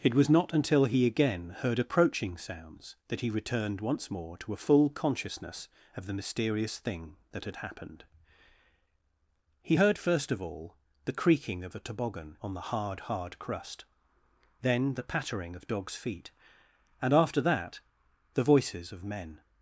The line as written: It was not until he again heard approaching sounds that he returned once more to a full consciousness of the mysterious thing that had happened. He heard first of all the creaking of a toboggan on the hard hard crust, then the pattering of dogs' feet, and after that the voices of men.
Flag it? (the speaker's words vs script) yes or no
no